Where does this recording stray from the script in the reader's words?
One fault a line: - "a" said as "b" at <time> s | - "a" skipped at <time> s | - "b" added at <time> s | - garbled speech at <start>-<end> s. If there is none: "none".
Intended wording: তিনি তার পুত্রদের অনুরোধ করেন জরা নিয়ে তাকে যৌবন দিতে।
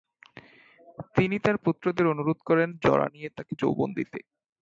none